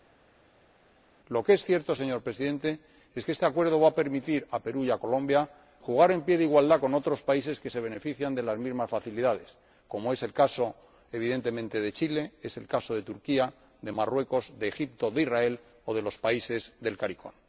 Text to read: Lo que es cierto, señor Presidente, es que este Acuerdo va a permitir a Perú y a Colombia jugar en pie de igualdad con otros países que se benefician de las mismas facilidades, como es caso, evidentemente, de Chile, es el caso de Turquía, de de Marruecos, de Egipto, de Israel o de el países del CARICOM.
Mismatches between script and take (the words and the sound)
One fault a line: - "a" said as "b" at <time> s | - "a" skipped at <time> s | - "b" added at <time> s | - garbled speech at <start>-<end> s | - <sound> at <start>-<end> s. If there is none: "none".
- "el" added at 10.2 s
- "de" skipped at 13.9 s
- "el" said as "los" at 16.0 s